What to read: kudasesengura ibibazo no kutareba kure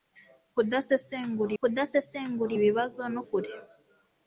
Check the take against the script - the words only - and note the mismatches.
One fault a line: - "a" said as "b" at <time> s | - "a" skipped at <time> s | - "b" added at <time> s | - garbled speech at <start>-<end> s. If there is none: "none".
- "kudasesengura" added at 1.6 s
- "kutareba" skipped at 3.2 s